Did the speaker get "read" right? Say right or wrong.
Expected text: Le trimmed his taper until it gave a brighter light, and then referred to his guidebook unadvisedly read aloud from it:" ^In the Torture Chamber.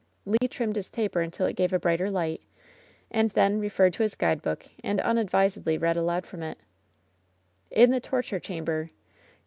right